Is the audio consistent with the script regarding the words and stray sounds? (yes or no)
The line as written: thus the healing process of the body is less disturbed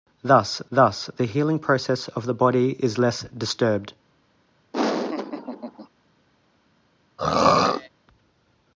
no